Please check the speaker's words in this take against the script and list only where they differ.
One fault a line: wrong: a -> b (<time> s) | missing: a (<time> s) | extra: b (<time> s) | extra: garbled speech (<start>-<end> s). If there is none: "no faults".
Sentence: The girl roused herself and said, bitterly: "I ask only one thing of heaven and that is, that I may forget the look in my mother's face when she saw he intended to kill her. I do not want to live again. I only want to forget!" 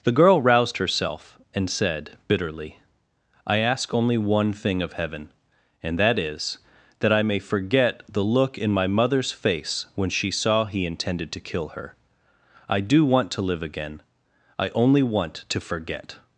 missing: not (13.0 s)